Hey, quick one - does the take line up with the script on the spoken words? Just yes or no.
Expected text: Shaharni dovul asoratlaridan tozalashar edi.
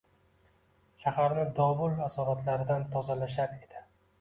yes